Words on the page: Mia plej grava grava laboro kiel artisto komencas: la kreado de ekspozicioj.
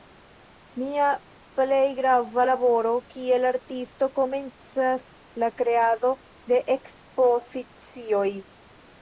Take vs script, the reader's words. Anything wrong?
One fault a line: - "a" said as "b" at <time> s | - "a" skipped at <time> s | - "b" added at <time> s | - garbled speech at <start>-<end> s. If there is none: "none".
- "grava" skipped at 2.5 s